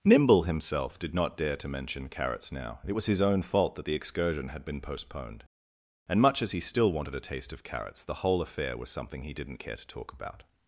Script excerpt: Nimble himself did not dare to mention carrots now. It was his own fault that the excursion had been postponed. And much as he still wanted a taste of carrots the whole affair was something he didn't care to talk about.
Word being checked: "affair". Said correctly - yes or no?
yes